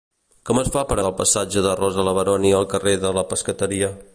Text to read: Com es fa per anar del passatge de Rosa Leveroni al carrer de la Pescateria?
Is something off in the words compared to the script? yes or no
yes